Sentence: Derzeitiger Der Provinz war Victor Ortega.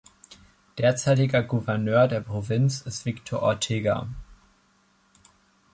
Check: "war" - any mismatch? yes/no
yes